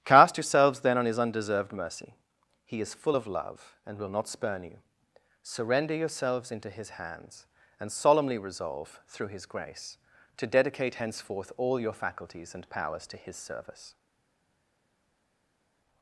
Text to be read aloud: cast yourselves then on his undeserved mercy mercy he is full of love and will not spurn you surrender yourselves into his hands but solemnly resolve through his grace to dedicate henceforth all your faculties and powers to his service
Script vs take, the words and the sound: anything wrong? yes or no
yes